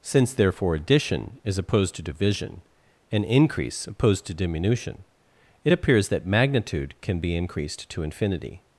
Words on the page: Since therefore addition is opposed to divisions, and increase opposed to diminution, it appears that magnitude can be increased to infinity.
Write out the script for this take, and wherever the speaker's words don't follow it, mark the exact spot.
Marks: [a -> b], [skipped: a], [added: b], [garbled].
Since therefore addition is opposed to [divisions, -> division] and increase opposed to diminution, it appears that magnitude can be increased to infinity.